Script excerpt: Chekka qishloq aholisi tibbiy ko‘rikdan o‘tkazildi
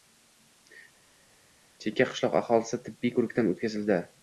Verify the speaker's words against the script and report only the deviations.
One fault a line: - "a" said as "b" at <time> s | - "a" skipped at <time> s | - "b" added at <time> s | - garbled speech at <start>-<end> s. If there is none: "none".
none